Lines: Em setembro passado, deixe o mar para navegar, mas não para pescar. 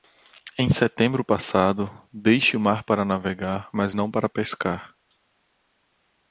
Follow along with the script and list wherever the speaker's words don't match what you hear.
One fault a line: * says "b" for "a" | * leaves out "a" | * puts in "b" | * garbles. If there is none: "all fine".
all fine